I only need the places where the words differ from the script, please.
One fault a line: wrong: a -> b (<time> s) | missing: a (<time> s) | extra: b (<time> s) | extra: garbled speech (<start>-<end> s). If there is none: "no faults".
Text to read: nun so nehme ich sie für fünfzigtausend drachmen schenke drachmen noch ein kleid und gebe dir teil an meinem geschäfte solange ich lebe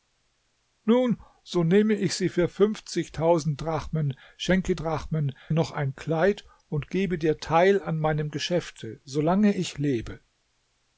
no faults